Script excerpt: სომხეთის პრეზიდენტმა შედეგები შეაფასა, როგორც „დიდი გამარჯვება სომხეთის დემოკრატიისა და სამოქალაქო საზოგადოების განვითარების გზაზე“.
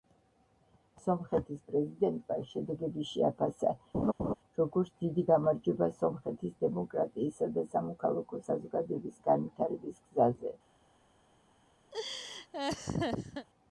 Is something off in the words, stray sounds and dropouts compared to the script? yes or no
yes